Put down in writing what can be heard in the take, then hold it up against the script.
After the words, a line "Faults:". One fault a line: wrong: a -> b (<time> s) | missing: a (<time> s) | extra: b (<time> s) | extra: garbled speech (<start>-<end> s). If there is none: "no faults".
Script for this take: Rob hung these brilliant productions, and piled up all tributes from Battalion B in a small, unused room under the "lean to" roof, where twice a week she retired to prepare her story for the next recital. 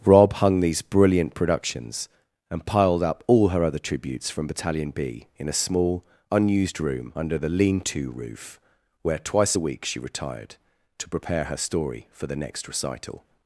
Rob hung these brilliant productions, and piled up all her other tributes from Battalion B in a small, unused room under the "lean to" roof, where twice a week she retired to prepare her story for the next recital.
Faults:
extra: her other (3.5 s)